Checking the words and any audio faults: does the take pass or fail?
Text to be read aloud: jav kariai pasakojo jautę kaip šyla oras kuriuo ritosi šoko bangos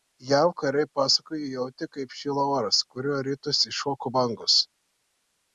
pass